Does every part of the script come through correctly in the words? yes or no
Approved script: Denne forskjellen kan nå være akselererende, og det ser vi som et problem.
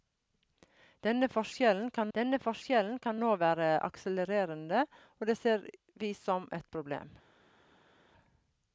no